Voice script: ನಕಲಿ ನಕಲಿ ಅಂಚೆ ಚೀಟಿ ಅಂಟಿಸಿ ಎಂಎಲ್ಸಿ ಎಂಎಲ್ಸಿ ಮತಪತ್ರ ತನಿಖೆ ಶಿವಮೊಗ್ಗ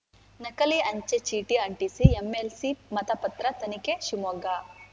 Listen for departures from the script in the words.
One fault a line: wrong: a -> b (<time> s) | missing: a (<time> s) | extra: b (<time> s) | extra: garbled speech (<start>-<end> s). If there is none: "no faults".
missing: ನಕಲಿ (0.8 s)
missing: ಎಂಎಲ್ಸಿ (2.7 s)